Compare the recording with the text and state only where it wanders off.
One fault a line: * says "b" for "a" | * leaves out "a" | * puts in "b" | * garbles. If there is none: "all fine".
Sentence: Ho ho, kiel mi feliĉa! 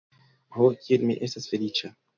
* leaves out "ho"
* puts in "estas"